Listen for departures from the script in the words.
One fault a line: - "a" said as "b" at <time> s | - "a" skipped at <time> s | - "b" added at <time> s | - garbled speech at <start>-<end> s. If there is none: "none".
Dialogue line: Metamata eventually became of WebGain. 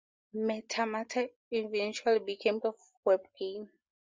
none